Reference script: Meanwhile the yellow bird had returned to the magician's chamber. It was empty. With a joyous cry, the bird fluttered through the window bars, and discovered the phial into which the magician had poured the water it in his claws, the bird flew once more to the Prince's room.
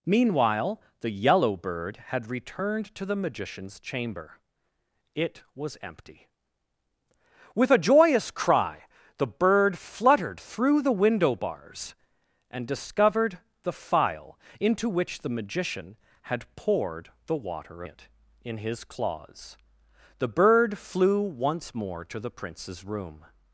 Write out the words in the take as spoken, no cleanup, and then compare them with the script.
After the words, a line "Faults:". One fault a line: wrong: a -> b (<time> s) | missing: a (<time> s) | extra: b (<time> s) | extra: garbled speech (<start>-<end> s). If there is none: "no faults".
Meanwhile the yellow bird had returned to the magician's chamber. It was empty. With a joyous cry, the bird fluttered through the window bars, and discovered the phial into which the magician had poured the water it in his claws, the bird flew once more to the Prince's room.
Faults:
no faults